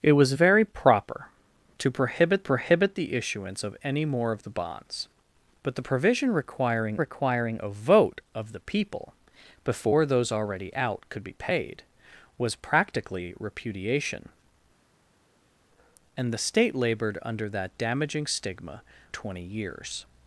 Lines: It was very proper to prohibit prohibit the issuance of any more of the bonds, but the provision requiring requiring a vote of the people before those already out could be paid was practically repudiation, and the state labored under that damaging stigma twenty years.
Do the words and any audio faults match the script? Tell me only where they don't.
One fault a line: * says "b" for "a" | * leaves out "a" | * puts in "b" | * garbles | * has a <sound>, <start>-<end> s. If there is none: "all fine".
all fine